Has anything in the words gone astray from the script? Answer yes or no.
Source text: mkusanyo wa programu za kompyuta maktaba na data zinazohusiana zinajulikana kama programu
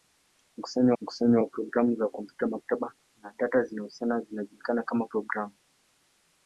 yes